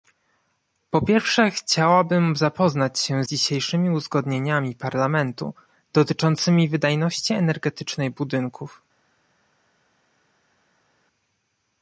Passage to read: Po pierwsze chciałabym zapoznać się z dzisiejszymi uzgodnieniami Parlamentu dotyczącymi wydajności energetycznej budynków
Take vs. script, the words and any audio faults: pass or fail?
fail